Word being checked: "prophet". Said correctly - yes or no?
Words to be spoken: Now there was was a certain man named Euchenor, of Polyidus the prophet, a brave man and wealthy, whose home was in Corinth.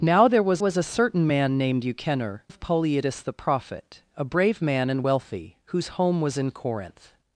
yes